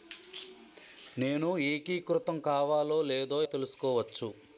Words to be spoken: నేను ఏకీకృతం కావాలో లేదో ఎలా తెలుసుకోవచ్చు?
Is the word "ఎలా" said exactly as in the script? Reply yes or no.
no